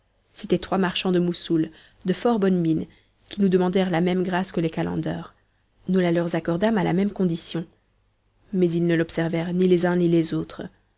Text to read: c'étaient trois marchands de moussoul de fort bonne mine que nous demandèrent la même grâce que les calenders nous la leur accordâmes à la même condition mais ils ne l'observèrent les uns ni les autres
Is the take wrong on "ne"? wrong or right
right